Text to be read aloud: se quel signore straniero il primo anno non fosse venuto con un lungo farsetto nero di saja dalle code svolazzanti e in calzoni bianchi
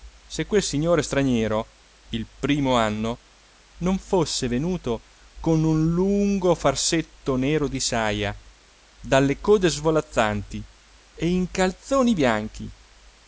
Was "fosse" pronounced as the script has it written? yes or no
yes